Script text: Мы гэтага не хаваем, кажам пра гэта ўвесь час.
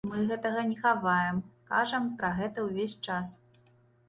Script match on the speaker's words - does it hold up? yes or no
yes